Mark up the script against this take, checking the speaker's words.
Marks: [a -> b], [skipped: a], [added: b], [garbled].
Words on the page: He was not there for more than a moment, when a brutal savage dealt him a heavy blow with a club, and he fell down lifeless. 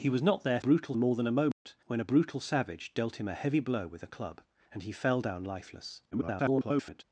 He was not there [for -> brutal] more than a moment, when a brutal savage dealt him a heavy blow with a club, and he fell down lifeless. [garbled]